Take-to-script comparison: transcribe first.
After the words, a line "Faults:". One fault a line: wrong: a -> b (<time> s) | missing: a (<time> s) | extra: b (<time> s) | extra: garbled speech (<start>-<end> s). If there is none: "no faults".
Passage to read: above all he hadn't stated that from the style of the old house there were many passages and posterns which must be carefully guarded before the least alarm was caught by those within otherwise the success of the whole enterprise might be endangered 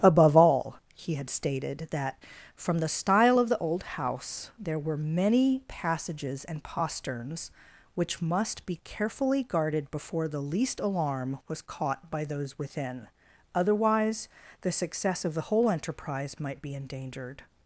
above all he had stated that from the style of the old house there were many passages and posterns which must be carefully guarded before the least alarm was caught by those within otherwise the success of the whole enterprise might be endangered
Faults:
wrong: hadn't -> had (1.1 s)